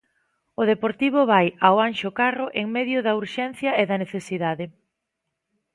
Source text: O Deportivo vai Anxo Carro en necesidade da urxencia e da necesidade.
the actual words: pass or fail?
fail